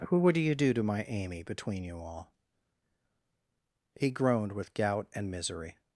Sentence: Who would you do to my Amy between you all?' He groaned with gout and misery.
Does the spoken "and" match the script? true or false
true